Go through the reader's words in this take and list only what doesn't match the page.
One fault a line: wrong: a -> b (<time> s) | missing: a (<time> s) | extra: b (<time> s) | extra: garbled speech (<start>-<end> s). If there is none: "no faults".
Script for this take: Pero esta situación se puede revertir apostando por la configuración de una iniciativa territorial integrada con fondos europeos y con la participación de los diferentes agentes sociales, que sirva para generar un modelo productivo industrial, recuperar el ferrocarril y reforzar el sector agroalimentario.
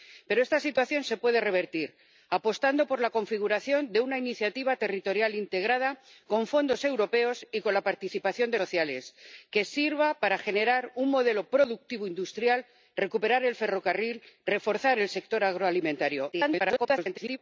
missing: los diferentes agentes (8.6 s)
extra: garbled speech (16.3-17.4 s)